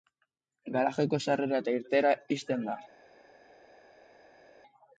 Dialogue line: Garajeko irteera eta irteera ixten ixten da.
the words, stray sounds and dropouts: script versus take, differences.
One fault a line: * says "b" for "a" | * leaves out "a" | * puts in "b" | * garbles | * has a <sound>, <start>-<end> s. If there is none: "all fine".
* says "sarrera" for "irteera"
* leaves out "ixten"